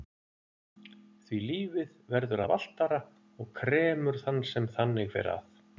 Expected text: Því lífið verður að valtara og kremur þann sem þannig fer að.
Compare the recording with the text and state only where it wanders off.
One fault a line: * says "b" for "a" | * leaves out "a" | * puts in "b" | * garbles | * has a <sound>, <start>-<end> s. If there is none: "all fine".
all fine